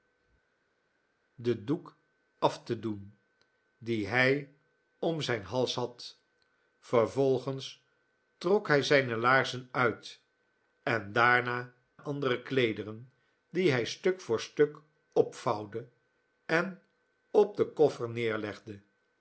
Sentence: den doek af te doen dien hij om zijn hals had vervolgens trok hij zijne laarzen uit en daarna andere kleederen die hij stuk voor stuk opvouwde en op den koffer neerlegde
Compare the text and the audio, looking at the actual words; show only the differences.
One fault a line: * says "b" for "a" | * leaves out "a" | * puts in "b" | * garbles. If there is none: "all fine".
all fine